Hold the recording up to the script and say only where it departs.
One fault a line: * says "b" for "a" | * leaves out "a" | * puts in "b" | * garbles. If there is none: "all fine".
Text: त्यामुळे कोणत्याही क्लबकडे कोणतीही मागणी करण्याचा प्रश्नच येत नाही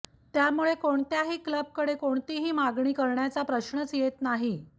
all fine